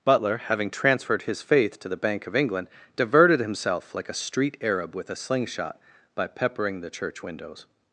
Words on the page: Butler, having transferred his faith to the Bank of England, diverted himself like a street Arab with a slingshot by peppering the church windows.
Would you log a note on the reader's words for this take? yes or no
no